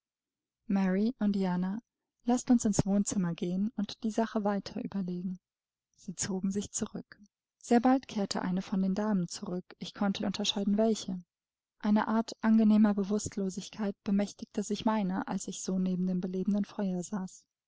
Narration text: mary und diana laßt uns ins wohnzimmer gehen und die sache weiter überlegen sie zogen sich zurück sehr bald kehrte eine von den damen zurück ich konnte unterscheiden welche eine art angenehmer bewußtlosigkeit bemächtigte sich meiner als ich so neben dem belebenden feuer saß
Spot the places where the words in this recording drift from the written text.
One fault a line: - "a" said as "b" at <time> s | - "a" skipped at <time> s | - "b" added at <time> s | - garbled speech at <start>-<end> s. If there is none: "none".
none